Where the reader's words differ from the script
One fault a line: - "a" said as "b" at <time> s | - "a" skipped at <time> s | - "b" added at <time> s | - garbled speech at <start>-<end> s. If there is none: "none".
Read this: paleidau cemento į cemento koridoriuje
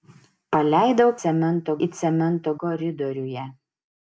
none